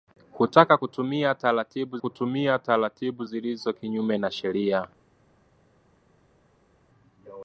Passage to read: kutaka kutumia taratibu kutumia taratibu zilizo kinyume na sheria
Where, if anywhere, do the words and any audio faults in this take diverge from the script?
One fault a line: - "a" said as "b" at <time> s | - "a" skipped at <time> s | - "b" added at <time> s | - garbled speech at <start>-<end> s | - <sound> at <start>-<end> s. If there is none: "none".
none